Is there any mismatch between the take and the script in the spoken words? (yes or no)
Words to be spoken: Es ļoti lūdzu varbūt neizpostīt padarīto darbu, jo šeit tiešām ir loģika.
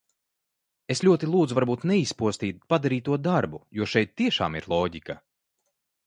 no